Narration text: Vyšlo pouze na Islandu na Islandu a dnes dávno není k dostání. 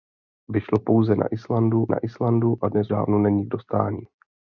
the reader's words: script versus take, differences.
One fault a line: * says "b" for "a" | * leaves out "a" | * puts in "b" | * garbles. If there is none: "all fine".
all fine